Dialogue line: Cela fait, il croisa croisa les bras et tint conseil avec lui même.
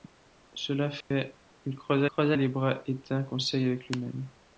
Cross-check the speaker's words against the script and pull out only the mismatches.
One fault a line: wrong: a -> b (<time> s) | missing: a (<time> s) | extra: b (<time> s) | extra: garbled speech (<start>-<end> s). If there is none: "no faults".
no faults